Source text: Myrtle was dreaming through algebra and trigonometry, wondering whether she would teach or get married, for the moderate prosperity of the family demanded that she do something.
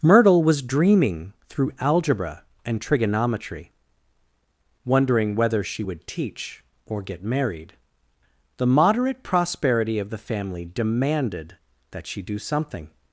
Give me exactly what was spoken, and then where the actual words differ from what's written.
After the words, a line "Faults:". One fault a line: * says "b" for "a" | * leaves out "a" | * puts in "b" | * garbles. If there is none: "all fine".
Myrtle was dreaming through algebra and trigonometry, wondering whether she would teach or get married, the moderate prosperity of the family demanded that she do something.
Faults:
* leaves out "for"